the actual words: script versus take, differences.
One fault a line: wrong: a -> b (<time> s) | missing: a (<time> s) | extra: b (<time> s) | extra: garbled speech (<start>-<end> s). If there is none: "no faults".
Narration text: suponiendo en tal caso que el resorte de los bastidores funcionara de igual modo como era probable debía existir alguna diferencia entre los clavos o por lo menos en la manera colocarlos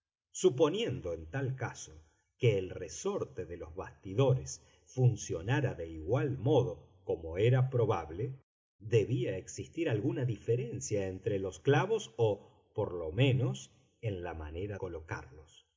no faults